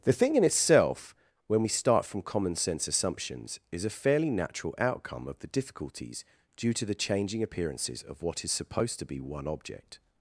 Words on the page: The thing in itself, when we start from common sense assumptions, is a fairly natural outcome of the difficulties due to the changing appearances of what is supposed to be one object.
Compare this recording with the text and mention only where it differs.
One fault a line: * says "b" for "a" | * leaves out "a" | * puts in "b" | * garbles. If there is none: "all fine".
all fine